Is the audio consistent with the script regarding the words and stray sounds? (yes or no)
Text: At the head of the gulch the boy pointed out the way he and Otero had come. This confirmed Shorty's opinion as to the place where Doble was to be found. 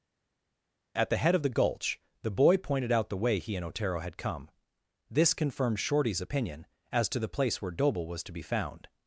yes